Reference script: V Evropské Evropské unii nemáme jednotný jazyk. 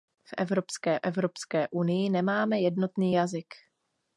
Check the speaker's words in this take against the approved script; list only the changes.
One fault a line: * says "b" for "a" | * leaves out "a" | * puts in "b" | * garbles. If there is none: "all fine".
all fine